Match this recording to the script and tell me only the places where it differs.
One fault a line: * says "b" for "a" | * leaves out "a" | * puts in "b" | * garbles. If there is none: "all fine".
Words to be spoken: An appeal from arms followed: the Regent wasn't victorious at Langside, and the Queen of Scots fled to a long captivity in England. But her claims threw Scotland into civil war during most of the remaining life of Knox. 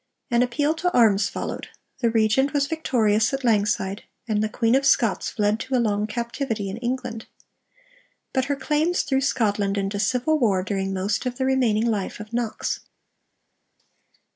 * says "to" for "from"
* says "was" for "wasn't"